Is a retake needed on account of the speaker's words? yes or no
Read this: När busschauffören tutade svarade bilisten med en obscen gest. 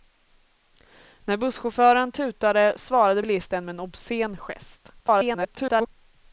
yes